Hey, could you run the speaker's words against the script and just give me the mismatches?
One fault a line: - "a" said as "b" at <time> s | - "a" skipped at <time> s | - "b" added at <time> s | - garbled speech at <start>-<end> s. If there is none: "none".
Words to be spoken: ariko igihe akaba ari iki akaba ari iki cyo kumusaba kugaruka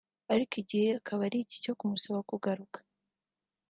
- "akaba ari iki" skipped at 1.6 s